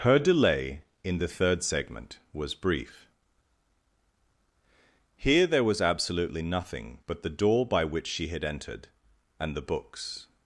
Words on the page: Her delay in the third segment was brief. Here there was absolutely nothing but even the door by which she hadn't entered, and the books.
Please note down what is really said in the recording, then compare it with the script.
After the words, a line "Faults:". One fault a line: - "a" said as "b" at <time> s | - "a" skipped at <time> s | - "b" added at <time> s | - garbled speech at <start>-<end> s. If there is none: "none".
Her delay in the third segment was brief. Here there was absolutely nothing but the door by which she had entered, and the books.
Faults:
- "even" skipped at 7.2 s
- "hadn't" said as "had" at 8.3 s